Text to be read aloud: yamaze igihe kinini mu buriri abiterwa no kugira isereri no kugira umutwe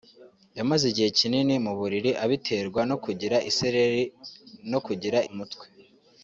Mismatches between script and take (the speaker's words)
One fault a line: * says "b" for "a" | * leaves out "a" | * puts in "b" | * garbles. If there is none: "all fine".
all fine